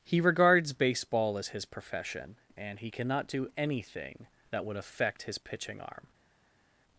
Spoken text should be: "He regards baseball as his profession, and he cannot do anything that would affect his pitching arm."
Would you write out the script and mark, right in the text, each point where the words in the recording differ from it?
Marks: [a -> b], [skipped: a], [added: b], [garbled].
"He regards baseball as his profession, and he cannot do anything that would affect his pitching arm."